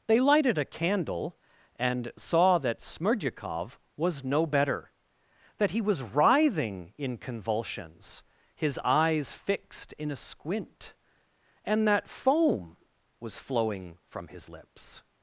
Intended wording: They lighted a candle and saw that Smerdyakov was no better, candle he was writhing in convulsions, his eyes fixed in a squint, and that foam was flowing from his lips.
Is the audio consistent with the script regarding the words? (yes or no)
no